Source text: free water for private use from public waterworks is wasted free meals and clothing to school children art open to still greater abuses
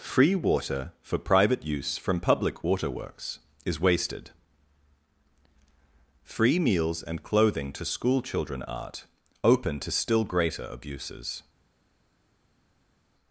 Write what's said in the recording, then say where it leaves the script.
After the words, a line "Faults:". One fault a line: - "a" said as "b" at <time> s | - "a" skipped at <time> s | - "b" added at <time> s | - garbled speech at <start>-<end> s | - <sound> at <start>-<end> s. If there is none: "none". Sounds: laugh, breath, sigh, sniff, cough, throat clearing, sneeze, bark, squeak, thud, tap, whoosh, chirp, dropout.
free water for private use from public waterworks is wasted free meals and clothing to school children art open to still greater abuses
Faults:
none